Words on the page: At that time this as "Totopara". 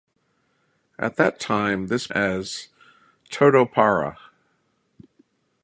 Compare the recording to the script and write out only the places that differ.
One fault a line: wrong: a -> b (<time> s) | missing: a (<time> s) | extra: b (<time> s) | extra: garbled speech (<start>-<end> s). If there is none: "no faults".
no faults